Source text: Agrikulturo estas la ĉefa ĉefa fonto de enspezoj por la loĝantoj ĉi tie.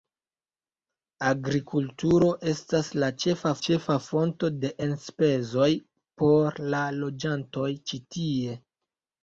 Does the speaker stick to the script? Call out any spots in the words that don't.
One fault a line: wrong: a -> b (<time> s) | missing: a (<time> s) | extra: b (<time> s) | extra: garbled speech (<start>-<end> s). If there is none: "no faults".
no faults